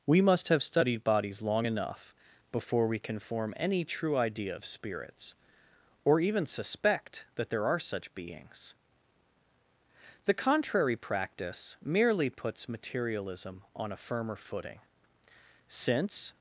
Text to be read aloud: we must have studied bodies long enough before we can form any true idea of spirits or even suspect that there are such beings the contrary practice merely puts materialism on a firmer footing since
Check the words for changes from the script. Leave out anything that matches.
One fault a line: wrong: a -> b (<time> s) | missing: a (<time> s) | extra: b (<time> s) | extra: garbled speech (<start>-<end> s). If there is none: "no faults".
no faults